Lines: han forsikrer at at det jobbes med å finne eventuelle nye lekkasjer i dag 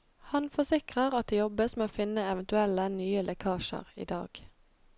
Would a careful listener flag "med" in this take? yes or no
no